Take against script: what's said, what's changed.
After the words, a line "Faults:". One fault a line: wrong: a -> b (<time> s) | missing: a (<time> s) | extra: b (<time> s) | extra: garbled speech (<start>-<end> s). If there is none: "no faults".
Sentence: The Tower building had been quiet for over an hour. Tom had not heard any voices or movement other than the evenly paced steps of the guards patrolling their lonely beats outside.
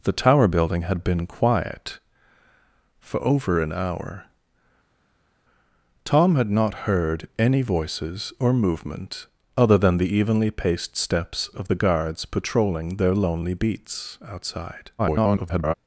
The Tower building had been quiet for over an hour. Tom had not heard any voices or movement other than the evenly paced steps of the guards patrolling their lonely beats outside. [garbled]
Faults:
extra: garbled speech (15.0-15.7 s)